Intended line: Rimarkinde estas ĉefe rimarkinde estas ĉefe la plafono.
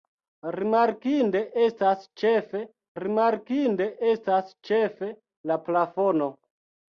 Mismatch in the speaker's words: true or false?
false